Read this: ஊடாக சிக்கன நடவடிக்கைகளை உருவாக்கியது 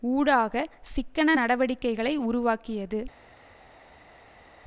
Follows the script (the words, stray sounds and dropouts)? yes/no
yes